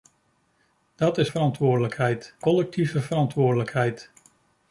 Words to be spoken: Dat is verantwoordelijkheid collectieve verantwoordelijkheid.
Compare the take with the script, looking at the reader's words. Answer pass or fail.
pass